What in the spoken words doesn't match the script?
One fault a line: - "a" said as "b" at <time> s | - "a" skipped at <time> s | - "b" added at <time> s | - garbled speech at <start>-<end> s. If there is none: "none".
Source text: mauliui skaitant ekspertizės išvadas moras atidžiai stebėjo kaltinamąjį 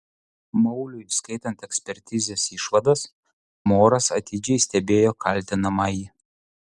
none